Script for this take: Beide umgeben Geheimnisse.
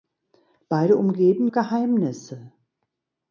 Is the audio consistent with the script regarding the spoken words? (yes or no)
yes